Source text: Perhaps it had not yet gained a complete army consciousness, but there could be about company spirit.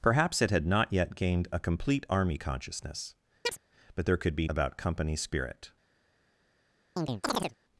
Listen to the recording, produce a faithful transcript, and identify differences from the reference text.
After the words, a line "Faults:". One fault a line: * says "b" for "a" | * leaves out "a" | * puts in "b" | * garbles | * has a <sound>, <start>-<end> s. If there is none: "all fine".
Perhaps it had not yet gained a complete army consciousness, but there could be about company spirit.
Faults:
* has a chirp, 3.4-3.6 s
* has a chirp, 7.0-7.5 s